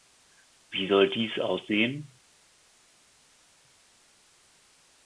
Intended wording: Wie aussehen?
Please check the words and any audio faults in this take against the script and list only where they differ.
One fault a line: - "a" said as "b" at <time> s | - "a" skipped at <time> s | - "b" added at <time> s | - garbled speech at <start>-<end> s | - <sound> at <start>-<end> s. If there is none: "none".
- "soll dies" added at 0.9 s